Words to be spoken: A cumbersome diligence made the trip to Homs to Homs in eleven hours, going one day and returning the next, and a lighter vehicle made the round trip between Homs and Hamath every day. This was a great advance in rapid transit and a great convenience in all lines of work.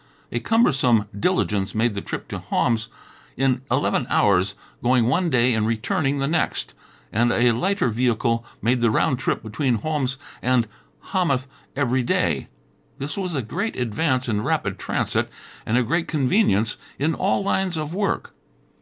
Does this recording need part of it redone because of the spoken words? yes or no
yes